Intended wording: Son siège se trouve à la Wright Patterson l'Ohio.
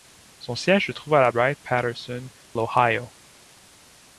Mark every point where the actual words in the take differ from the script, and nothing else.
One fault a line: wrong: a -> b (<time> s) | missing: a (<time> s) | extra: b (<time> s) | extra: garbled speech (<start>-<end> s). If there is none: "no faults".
no faults